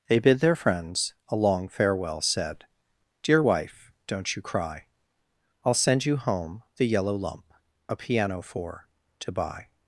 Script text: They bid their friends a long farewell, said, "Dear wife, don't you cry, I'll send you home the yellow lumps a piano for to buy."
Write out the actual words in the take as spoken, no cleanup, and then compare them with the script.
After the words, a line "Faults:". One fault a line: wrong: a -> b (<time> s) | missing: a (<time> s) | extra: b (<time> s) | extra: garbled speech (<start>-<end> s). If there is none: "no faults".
They bid their friends a long farewell, said, "Dear wife, don't you cry, I'll send you home the yellow lump a piano for to buy."
Faults:
wrong: lumps -> lump (7.2 s)